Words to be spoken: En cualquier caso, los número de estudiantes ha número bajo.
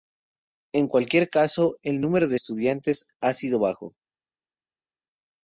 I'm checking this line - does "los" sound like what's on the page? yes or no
no